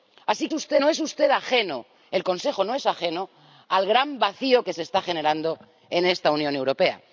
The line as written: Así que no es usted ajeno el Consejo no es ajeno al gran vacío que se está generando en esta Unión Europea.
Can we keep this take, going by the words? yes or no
no